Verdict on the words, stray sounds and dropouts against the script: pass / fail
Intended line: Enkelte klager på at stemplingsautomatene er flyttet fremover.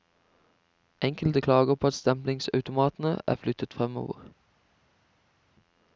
pass